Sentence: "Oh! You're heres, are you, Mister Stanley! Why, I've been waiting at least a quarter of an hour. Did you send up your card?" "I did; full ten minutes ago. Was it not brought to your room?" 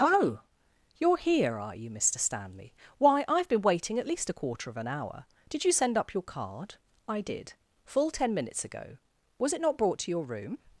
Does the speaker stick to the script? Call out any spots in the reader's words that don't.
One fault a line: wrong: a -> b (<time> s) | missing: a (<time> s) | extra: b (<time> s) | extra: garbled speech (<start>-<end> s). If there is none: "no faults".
wrong: heres -> here (1.2 s)